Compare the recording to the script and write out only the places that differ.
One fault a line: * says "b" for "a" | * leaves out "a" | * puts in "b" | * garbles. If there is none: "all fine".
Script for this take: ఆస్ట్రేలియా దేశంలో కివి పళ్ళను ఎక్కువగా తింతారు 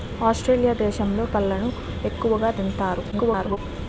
* leaves out "కివి"
* garbles